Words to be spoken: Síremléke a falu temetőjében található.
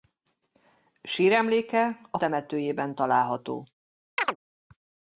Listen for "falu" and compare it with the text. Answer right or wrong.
wrong